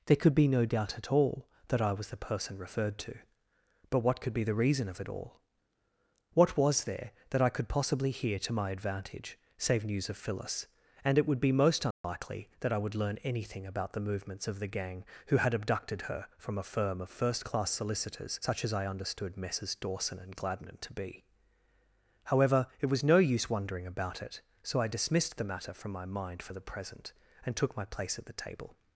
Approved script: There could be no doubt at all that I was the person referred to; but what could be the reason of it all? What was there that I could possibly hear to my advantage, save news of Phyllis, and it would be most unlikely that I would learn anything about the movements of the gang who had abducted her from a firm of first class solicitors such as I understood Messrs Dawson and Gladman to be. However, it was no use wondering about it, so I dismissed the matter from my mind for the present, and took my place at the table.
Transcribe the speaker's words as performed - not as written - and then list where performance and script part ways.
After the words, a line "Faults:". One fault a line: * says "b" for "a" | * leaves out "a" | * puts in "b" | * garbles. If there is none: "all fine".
There could be no doubt at all that I was the person referred to; but what could be the reason of it all? What was there that I could possibly hear to my advantage, save news of Phyllis, and it would be most unlikely that I would learn anything about the movements of the gang who had abducted her from a firm of first class solicitors such as I understood Messrs Dawson and Gladman to be. However, it was no use wondering about it, so I dismissed the matter from my mind for the present, and took my place at the table.
Faults:
all fine